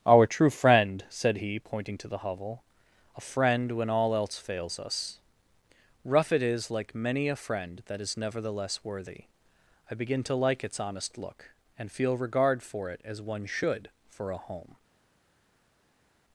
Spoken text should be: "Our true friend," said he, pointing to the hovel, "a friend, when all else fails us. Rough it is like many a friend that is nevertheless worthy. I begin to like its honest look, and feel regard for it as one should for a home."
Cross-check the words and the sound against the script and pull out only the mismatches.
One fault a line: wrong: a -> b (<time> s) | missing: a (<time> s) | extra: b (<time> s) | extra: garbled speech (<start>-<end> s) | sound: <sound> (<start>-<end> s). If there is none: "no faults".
no faults